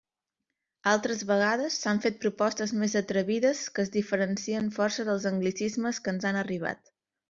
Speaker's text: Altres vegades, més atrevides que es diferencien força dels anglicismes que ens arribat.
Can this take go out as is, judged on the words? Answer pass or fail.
fail